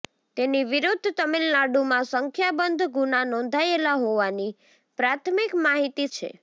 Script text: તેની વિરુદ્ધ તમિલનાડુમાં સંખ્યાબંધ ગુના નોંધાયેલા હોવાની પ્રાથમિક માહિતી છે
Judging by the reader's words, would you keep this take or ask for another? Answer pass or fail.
pass